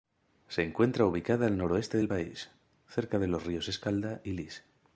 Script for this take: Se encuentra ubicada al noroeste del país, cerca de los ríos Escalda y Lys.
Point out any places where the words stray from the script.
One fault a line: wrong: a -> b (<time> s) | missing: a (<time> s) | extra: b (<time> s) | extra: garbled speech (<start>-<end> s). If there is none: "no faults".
no faults